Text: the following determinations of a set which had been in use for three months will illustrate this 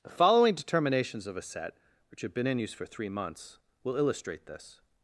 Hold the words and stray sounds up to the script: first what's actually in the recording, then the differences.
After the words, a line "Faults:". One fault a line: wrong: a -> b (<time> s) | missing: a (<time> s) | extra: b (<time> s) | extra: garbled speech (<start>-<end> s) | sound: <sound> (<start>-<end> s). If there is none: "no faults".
the following determinations of a set which have been in use for three months will illustrate this
Faults:
wrong: had -> have (2.2 s)